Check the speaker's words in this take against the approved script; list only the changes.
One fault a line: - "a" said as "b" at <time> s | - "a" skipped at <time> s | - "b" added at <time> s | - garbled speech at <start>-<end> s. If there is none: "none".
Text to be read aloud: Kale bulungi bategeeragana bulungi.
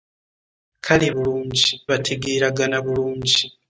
none